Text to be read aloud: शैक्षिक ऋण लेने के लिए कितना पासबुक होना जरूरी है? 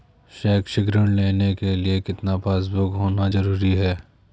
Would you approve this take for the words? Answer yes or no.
yes